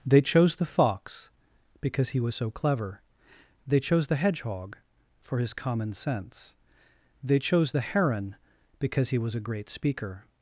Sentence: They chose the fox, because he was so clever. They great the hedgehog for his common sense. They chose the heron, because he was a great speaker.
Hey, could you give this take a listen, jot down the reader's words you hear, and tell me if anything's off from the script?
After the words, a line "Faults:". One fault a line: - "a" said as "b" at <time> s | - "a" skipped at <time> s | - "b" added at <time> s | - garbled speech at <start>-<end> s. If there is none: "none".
They chose the fox, because he was so clever. They chose the hedgehog for his common sense. They chose the heron, because he was a great speaker.
Faults:
- "great" said as "chose" at 3.8 s